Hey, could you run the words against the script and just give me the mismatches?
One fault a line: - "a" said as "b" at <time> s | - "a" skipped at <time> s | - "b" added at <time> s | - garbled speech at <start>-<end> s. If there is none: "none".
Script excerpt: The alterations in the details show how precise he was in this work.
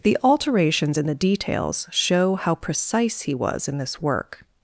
none